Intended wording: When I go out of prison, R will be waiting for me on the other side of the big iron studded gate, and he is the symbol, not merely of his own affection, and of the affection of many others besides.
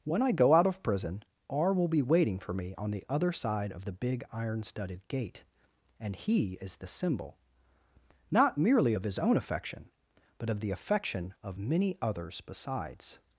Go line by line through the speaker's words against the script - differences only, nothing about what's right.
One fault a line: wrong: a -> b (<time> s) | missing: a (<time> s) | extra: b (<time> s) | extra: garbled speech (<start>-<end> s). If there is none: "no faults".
wrong: and -> but (10.4 s)